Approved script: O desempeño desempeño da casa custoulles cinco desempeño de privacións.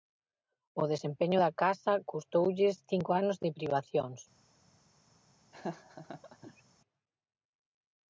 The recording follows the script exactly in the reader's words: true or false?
false